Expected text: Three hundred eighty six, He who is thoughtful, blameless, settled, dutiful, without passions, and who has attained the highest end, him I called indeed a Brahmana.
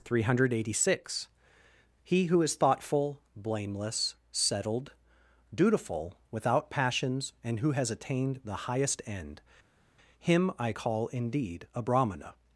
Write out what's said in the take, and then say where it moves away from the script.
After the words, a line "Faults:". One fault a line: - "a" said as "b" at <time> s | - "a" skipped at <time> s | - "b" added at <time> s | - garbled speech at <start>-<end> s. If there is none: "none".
Three hundred eighty six, He who is thoughtful, blameless, settled, dutiful, without passions, and who has attained the highest end, him I call indeed a Brahmana.
Faults:
- "called" said as "call" at 10.7 s